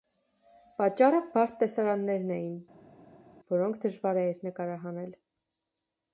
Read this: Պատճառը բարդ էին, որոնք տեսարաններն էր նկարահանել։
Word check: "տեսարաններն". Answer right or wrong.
wrong